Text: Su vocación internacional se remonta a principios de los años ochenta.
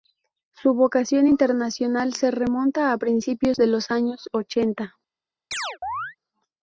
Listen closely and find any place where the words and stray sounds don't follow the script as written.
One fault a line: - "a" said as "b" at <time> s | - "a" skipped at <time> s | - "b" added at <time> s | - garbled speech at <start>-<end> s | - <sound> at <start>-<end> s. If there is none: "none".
- chirp at 5.5-6.2 s